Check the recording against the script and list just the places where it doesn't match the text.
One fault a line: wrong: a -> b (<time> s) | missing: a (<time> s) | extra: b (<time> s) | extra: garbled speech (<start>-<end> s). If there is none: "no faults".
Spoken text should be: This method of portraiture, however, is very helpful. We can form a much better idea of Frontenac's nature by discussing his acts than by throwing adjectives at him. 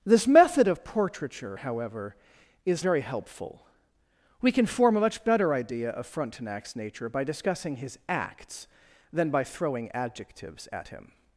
no faults